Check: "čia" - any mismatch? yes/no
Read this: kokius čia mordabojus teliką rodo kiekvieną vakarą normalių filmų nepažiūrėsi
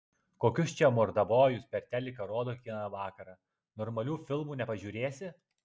no